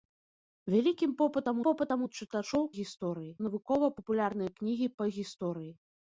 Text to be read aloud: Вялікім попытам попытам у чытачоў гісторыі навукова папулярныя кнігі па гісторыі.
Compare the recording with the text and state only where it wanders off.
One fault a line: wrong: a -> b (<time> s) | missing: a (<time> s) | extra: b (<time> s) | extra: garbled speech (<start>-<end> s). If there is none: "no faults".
no faults